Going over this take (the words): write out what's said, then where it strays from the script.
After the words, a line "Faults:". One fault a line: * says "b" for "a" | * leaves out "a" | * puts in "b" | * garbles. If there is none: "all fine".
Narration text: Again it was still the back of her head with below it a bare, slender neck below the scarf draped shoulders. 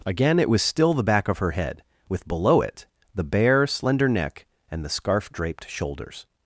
Again it was still the back of her head with below it the bare, slender neck and the scarf draped shoulders.
Faults:
* says "the" for "a"
* says "and" for "below"